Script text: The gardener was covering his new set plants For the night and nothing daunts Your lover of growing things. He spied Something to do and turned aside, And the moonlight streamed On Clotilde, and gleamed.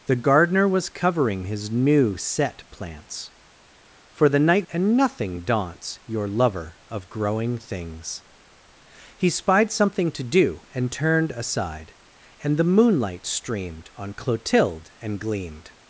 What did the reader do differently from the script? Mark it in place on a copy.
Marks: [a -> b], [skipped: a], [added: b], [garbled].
The gardener was covering his new set plants For the night and nothing daunts Your lover of growing things. He spied Something to do and turned aside, And the moonlight streamed On Clotilde, and gleamed.